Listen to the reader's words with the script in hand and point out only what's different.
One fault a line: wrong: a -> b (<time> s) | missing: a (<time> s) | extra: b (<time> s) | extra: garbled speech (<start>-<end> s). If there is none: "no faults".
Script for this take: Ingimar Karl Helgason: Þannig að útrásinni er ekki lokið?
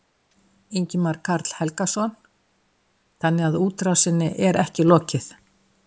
no faults